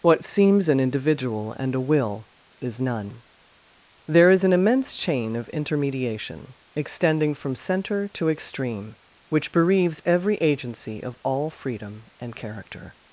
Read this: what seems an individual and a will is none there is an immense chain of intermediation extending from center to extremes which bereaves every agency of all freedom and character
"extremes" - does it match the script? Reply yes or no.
no